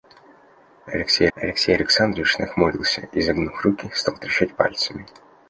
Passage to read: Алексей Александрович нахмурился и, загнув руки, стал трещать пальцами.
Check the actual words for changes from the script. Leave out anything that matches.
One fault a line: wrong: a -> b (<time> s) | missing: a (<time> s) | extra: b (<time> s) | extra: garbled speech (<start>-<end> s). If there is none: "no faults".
extra: алексей (1.4 s)